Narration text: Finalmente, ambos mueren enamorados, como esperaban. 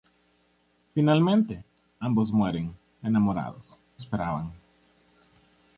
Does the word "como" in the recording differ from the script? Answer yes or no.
yes